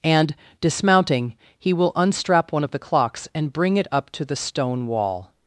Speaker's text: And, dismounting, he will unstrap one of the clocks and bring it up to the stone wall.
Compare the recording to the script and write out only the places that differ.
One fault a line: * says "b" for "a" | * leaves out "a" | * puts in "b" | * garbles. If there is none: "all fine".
all fine